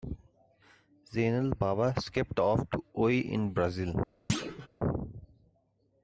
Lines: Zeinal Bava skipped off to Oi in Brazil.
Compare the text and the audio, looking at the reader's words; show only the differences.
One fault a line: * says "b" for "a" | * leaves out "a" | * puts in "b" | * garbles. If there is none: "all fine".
all fine